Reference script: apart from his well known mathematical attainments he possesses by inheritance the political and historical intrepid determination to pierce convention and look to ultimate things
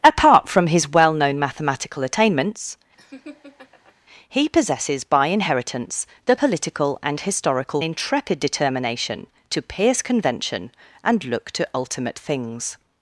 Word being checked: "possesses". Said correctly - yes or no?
yes